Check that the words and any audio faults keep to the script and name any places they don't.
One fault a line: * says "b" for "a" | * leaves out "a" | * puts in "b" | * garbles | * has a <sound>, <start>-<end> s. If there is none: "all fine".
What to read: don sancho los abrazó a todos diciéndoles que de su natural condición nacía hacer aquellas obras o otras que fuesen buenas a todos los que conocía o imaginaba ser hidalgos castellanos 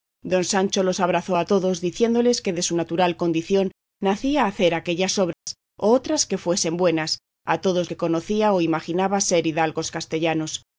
* has a dropout, 5.3-5.5 s
* leaves out "los"